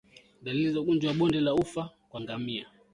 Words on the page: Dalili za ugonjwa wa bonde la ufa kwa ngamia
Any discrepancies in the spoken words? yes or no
no